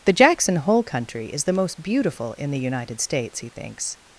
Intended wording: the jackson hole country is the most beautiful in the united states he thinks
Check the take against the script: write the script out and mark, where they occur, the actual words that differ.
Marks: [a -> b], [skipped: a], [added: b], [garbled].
the jackson hole country is the most beautiful in the united states he thinks